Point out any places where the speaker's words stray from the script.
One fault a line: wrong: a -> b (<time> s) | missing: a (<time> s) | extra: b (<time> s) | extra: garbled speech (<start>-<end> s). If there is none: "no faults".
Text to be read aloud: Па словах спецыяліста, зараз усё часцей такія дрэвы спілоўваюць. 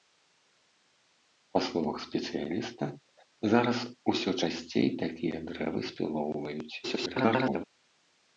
extra: garbled speech (6.8-7.6 s)